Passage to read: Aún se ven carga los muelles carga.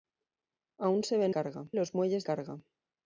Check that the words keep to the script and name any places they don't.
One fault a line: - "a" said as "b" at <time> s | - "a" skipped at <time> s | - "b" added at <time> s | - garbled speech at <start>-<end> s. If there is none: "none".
none